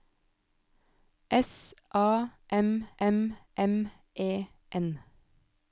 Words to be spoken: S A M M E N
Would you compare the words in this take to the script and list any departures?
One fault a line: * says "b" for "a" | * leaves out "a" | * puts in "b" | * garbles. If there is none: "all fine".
* puts in "M"